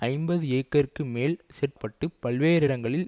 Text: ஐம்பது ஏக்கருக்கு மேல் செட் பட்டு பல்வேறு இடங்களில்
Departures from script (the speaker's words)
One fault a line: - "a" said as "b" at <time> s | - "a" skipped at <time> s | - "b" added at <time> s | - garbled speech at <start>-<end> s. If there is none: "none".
none